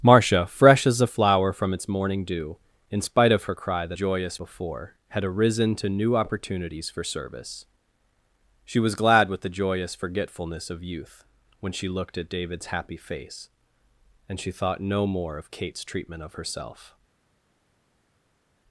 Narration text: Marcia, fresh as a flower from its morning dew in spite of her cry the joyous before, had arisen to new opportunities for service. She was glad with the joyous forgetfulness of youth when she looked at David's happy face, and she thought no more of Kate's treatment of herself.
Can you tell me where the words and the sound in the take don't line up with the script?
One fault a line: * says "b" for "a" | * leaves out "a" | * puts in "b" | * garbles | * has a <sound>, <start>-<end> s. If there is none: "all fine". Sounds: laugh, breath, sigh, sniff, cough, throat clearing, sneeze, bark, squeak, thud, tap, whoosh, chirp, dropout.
all fine